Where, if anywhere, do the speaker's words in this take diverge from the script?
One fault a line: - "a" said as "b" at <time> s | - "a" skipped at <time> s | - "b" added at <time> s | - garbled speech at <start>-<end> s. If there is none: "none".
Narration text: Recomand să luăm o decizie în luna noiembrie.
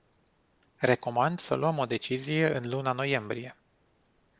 none